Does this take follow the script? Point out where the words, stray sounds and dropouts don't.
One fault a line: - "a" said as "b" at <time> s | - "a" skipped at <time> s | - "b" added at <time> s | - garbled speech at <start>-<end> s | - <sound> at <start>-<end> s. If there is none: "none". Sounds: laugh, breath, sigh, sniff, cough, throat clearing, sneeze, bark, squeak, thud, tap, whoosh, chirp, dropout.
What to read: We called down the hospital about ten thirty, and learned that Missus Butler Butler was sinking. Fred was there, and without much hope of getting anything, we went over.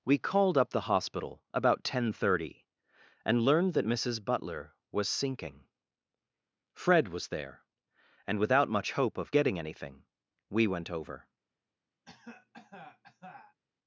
- "down" said as "up" at 0.6 s
- "Butler" skipped at 4.7 s
- cough at 12.0-13.6 s